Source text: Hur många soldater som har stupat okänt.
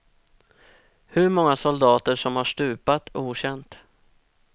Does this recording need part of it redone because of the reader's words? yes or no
no